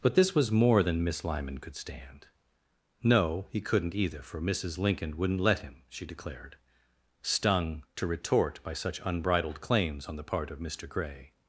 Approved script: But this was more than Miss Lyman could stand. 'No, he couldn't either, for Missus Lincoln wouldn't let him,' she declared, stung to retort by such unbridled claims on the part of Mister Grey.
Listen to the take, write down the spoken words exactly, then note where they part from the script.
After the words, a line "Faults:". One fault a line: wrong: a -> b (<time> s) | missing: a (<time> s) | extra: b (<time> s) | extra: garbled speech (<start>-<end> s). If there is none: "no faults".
But this was more than Miss Lyman could stand. 'No, he couldn't either, for Missus Lincoln wouldn't let him,' she declared, stung to retort by such unbridled claims on the part of Mister Grey.
Faults:
no faults